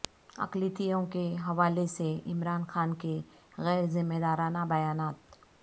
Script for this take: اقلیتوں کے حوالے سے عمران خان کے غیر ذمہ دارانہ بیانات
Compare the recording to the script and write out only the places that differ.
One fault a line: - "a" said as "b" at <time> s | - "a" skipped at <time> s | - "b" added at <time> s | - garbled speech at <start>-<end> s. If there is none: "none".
none